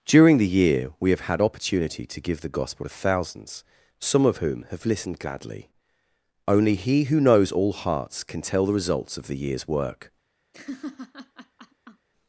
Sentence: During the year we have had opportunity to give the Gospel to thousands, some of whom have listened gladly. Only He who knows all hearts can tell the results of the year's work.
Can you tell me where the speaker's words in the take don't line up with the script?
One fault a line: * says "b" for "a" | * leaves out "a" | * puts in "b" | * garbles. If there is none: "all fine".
all fine